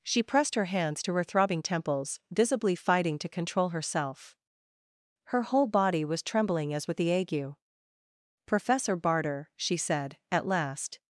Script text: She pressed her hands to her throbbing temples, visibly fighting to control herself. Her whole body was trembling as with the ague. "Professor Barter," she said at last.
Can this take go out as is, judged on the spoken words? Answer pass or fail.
pass